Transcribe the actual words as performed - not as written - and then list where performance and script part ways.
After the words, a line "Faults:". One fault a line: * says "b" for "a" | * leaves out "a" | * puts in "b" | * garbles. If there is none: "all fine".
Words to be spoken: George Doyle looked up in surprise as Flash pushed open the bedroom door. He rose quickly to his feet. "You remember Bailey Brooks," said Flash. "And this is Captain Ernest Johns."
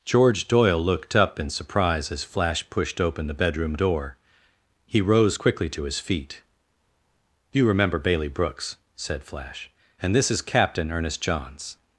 George Doyle looked up in surprise as Flash pushed open the bedroom door. He rose quickly to his feet. "You remember Bailey Brooks," said Flash. "And this is Captain Ernest Johns."
Faults:
all fine